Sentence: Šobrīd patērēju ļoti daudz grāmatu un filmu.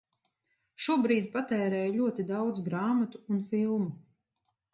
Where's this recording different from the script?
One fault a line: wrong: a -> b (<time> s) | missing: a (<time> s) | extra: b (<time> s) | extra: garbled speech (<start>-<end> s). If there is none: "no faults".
no faults